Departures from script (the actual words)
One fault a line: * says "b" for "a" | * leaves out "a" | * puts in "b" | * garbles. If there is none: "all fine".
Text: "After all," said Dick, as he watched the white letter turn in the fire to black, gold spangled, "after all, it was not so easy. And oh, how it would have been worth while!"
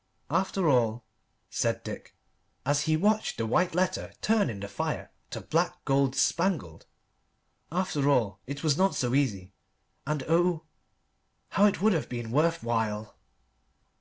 all fine